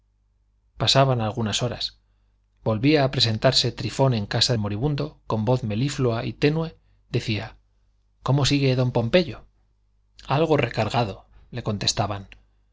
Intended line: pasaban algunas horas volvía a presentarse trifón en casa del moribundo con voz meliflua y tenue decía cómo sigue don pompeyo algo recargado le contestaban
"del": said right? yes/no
no